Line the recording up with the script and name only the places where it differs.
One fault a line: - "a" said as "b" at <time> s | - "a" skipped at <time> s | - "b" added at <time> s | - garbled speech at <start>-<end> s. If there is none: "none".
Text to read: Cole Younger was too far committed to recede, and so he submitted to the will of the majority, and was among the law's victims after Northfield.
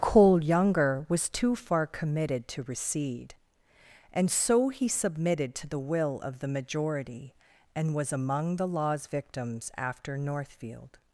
none